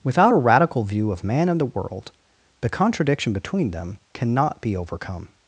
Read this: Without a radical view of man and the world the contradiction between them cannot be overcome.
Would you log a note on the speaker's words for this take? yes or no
no